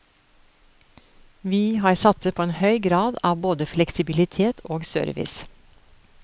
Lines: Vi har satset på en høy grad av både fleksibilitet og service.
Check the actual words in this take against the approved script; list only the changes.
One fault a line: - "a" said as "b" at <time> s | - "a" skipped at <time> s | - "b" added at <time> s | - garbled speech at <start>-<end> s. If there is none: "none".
none